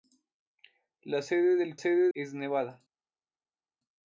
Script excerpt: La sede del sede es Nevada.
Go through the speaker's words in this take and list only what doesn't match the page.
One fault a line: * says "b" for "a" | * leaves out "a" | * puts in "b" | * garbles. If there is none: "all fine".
all fine